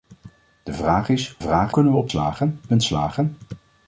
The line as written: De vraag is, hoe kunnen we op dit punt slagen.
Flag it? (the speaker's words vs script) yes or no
yes